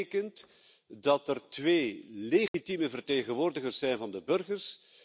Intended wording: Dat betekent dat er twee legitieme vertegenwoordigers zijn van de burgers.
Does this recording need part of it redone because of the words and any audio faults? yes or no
yes